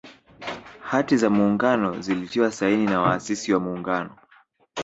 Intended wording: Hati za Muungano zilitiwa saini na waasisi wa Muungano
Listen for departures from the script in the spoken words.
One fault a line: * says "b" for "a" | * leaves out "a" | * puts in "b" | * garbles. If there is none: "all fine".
all fine